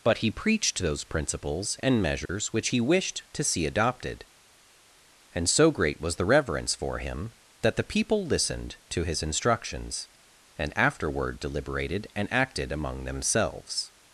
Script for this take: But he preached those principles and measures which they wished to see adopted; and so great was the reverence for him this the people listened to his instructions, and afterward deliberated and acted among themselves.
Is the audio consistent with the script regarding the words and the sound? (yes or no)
no